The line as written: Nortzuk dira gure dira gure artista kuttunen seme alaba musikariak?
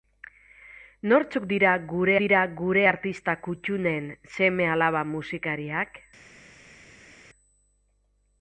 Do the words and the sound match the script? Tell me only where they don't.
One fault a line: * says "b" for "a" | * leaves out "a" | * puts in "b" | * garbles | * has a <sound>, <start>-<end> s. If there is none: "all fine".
all fine